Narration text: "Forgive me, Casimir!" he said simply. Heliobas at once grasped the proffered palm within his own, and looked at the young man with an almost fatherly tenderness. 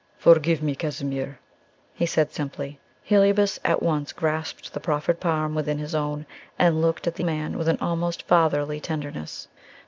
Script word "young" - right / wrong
wrong